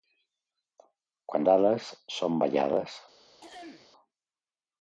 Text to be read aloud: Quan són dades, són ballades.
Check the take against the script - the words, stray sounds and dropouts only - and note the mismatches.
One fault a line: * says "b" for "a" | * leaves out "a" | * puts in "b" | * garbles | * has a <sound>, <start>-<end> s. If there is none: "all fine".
* leaves out "són"
* has a throat clearing, 3.4-3.9 s